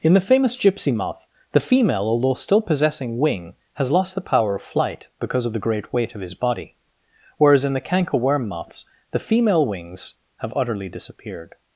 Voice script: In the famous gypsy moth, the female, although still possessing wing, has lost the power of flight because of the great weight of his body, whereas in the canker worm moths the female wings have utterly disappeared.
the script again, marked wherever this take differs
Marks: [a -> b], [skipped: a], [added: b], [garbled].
In the famous gypsy moth, the female, although still possessing wing, has lost the power of flight because of the great weight of his body, whereas in the canker worm moths the female wings have utterly disappeared.